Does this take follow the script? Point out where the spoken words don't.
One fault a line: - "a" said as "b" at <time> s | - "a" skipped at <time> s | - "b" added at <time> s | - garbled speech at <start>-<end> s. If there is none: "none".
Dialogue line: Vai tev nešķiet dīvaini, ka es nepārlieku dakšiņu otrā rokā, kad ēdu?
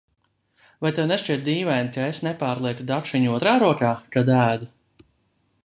none